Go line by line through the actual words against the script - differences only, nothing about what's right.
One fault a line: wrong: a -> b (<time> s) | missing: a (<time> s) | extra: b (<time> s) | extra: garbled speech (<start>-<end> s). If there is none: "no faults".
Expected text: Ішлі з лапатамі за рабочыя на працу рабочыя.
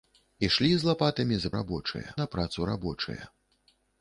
no faults